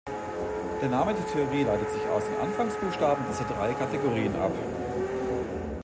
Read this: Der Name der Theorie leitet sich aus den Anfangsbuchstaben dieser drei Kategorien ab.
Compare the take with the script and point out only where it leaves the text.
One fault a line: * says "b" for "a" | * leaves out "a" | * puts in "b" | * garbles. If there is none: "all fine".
all fine